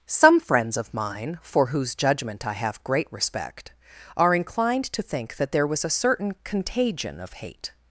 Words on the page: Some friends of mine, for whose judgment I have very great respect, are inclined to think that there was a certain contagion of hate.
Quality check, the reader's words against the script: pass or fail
fail